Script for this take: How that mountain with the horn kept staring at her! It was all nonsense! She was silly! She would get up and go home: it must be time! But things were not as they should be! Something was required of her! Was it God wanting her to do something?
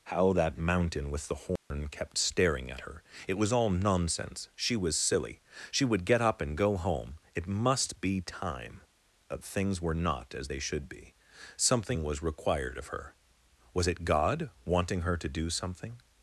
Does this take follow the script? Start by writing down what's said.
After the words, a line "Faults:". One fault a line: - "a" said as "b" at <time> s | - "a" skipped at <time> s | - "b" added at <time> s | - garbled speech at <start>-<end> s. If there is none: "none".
How that mountain with the horn kept staring at her! It was all nonsense! She was silly! She would get up and go home: it must be time! But things were not as they should be! Something was required of her! Was it God wanting her to do something?
Faults:
none